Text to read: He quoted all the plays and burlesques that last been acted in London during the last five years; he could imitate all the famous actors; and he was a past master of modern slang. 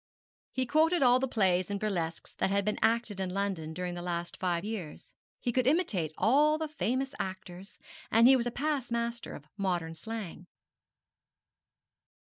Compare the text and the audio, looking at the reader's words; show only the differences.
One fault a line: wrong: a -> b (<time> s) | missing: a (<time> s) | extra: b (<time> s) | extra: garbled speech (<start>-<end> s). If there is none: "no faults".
wrong: last -> had (2.5 s)